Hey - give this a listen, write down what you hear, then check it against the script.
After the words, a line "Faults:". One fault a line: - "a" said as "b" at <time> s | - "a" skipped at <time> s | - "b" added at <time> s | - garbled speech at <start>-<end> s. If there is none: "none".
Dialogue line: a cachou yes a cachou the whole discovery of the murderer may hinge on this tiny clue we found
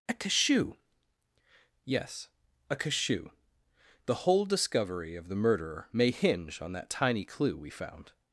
a cachou yes a cachou the whole discovery of the murderer may hinge on that tiny clue we found
Faults:
- "this" said as "that" at 6.7 s